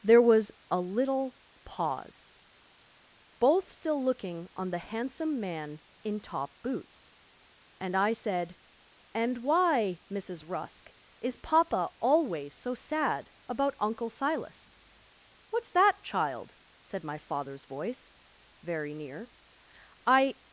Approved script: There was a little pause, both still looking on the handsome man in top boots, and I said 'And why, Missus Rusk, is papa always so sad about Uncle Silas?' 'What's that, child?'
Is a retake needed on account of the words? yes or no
yes